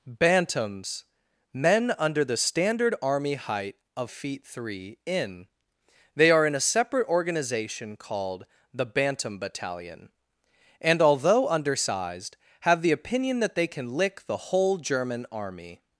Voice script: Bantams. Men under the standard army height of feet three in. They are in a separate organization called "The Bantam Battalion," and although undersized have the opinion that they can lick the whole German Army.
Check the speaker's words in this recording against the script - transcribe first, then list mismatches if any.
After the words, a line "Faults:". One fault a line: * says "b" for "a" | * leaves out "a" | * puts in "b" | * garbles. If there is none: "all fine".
Bantams. Men under the standard army height of feet three in. They are in a separate organization called "The Bantam Battalion," and although undersized have the opinion that they can lick the whole German Army.
Faults:
all fine